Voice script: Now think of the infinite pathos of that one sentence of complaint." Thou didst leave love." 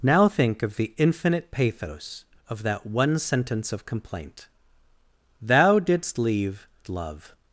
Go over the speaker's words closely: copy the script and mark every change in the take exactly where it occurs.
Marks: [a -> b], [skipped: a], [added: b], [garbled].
Now think of the infinite pathos of that one sentence of complaint." Thou didst leave love."